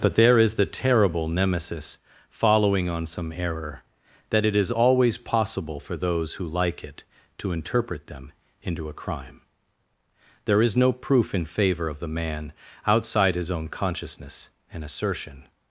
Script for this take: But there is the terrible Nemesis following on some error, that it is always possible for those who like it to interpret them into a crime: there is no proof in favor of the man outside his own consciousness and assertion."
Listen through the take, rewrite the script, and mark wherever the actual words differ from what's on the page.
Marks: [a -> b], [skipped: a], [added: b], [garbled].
But there is the terrible Nemesis following on some error, that it is always possible for those who like it to interpret them into a crime: there is no proof in favor of the man outside his own consciousness and assertion."